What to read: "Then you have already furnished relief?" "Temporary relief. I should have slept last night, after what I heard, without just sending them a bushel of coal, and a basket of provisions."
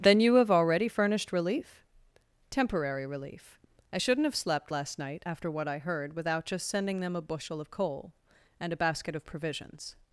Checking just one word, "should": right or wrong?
wrong